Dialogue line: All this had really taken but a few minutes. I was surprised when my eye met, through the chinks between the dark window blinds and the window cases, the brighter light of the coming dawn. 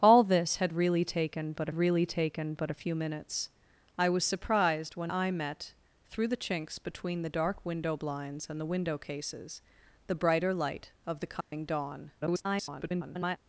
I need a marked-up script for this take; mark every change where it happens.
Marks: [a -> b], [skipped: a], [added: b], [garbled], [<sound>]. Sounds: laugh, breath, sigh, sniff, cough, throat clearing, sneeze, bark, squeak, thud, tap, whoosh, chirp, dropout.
All this had really taken but [added: really taken but] a few minutes. I was surprised when [skipped: my] eye met, through the chinks between the dark window blinds and the window cases, the brighter light of the coming [dropout] dawn. [garbled]